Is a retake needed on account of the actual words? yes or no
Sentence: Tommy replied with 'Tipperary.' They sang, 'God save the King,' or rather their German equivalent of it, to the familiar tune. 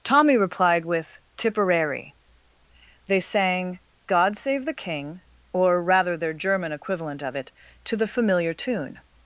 no